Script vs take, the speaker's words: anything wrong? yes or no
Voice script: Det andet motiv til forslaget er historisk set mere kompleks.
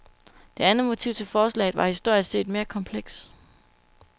yes